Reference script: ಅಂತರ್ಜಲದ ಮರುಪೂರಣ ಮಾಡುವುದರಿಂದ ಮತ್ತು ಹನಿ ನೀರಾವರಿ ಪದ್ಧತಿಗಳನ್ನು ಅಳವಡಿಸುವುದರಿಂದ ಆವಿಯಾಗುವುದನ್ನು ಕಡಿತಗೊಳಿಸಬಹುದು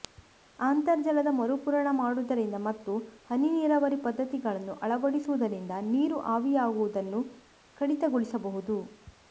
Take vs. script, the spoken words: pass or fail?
fail